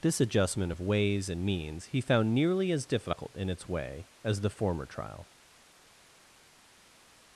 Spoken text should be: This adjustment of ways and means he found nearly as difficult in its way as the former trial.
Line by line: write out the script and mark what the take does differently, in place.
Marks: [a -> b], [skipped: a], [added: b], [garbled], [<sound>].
This adjustment of ways and means he found nearly as difficult in its way as the former trial.